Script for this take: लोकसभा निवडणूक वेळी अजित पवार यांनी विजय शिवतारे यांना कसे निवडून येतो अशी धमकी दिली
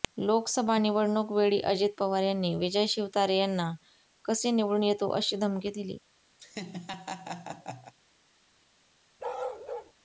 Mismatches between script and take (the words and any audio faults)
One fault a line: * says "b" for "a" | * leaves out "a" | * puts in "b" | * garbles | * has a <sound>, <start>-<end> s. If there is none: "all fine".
* has a laugh, 6.4-7.9 s
* has a bark, 9.2-9.9 s